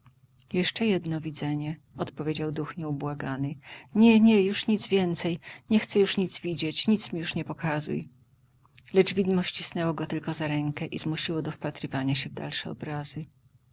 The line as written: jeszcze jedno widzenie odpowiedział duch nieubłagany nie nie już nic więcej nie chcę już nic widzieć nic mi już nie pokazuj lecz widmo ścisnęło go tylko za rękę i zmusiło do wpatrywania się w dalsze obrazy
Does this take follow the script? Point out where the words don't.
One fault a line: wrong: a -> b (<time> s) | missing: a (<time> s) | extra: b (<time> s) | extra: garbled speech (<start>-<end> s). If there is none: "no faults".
no faults